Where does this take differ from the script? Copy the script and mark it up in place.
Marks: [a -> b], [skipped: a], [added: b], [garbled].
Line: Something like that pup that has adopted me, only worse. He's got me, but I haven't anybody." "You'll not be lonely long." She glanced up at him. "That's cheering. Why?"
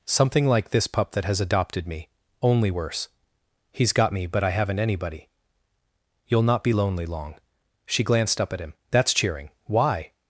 Something like [that -> this] pup that has adopted me, only worse. He's got me, but I haven't anybody." "You'll not be lonely long." She glanced up at him. "That's cheering. Why?"